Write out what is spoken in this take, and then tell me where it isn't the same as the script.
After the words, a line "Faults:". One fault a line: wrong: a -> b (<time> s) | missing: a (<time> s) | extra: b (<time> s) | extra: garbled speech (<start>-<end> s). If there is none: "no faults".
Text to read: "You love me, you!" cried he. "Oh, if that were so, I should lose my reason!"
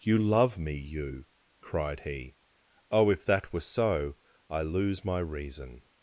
"You love me, you!" cried he. "Oh, if that were so, I lose my reason!"
Faults:
missing: should (4.6 s)